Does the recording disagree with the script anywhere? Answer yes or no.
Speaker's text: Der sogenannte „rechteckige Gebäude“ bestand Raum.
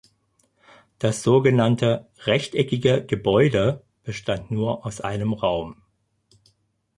yes